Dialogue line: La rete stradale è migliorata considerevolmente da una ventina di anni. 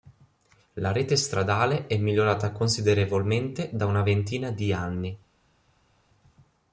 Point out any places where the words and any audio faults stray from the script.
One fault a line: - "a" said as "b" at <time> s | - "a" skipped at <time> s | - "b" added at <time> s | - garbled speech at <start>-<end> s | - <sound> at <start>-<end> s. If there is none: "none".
none